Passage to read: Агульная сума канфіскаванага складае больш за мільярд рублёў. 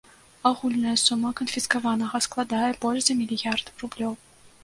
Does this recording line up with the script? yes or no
yes